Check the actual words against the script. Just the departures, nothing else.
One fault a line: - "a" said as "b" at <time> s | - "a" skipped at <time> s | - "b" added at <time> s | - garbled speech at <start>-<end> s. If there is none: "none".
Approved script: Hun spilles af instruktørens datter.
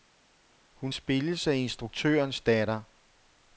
none